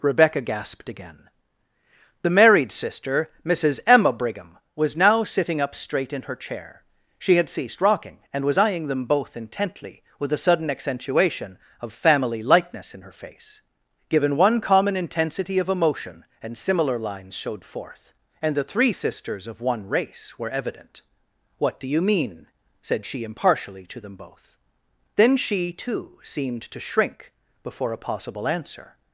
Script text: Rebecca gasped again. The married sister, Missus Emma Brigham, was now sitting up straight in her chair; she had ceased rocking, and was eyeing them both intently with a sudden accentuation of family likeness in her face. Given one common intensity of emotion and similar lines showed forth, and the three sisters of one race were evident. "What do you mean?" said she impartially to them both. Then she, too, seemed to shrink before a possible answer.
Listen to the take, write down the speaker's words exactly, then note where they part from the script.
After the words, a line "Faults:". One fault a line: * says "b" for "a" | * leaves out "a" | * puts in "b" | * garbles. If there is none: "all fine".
Rebecca gasped again. The married sister, Missus Emma Brigham, was now sitting up straight in her chair; she had ceased rocking, and was eyeing them both intently with a sudden accentuation of family likeness in her face. Given one common intensity of emotion and similar lines showed forth, and the three sisters of one race were evident. "What do you mean?" said she impartially to them both. Then she, too, seemed to shrink before a possible answer.
Faults:
all fine